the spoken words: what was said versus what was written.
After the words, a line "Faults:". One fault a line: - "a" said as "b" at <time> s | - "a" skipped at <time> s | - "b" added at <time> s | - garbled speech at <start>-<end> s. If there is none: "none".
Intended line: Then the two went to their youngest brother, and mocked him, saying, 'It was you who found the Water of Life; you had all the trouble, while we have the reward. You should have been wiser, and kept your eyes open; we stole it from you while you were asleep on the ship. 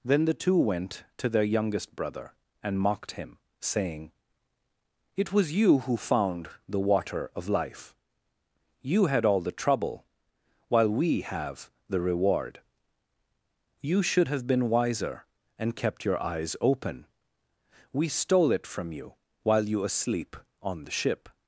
Then the two went to their youngest brother, and mocked him, saying, 'It was you who found the Water of Life; you had all the trouble, while we have the reward. You should have been wiser, and kept your eyes open; we stole it from you while you asleep on the ship.
Faults:
- "were" skipped at 19.8 s